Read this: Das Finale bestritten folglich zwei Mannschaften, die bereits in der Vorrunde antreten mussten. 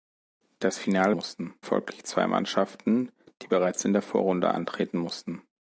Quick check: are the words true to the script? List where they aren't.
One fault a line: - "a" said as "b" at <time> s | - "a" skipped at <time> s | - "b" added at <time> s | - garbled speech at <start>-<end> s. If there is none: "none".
- "bestritten" said as "mussten" at 1.1 s